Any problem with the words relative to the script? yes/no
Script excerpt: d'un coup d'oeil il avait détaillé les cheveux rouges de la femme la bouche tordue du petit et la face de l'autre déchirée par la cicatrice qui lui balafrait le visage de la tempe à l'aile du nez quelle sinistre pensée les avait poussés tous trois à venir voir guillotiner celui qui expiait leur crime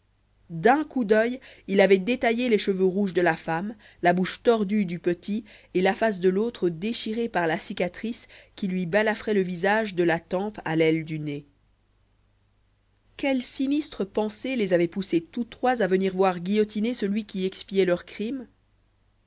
no